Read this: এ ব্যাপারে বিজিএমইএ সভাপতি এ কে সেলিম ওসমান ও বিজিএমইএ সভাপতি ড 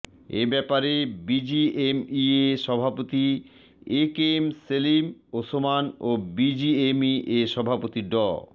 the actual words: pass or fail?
fail